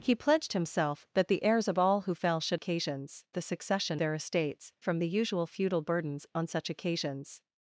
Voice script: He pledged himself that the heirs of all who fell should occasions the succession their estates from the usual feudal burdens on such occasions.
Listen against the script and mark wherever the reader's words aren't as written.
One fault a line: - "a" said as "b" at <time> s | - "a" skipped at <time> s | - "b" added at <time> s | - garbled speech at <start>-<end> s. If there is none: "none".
none